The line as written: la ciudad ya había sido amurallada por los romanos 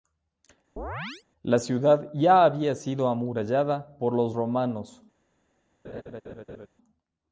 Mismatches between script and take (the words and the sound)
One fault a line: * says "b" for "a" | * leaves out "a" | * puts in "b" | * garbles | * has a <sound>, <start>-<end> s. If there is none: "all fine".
* has a chirp, 0.8-1.2 s
* has a laugh, 5.8-6.7 s